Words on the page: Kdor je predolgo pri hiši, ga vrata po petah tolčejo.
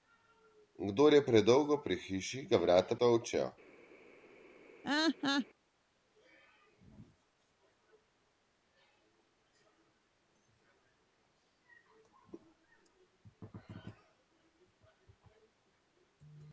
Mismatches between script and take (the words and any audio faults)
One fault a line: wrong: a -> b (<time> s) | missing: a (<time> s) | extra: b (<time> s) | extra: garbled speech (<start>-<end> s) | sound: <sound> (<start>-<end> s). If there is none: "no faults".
missing: po petah (3.0 s)
sound: laugh (4.8-5.5 s)